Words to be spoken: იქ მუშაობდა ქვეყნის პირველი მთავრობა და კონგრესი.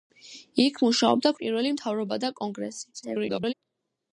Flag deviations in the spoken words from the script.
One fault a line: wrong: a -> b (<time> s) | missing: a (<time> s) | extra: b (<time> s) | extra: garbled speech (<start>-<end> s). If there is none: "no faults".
missing: ქვეყნის (1.3 s)
extra: garbled speech (2.9-3.5 s)